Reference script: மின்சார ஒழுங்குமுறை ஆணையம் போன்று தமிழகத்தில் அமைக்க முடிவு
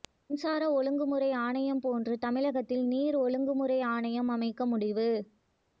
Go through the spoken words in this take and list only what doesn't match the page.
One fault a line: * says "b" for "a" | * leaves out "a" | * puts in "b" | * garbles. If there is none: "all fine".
* puts in "நீர் ஒழுங்குமுறை ஆணையம்"